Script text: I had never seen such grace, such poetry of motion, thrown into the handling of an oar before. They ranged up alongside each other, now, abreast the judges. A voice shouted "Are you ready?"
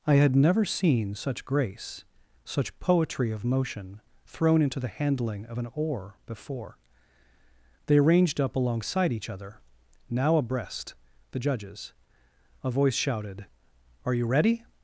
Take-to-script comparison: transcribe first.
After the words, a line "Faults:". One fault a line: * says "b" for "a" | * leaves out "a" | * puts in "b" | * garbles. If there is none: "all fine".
I had never seen such grace, such poetry of motion, thrown into the handling of an oar before. They ranged up alongside each other, now, abreast the judges. A voice shouted "Are you ready?"
Faults:
all fine